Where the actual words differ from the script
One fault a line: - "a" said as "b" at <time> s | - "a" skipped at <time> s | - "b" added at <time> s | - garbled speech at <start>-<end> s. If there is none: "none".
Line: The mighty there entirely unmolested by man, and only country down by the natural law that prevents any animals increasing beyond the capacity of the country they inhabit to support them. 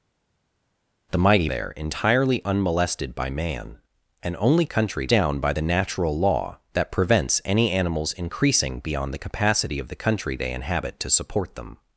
none